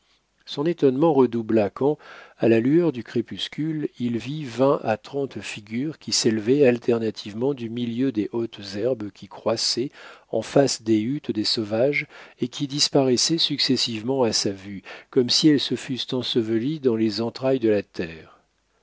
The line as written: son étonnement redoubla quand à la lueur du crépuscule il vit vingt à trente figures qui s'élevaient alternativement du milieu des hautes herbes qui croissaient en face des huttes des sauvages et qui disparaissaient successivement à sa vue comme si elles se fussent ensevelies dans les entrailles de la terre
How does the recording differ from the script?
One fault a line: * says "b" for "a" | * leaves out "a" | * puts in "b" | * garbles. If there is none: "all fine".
all fine